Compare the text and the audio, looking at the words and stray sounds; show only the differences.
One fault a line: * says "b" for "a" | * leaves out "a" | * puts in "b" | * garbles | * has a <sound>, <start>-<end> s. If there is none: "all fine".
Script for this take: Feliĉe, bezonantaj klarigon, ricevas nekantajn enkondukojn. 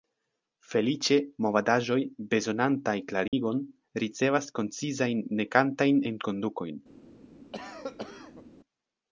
* puts in "movadaĵoj"
* has a dropout, 3.3-3.3 s
* puts in "koncizajn"
* has a cough, 7.5-8.4 s